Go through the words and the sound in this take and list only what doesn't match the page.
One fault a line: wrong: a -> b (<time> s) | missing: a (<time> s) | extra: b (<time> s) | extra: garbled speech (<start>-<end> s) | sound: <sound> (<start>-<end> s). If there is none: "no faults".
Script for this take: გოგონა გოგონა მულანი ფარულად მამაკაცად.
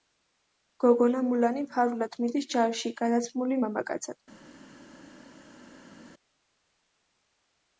missing: გოგონა (1.2 s)
extra: მიდის ჯარში გადაცმული (2.2 s)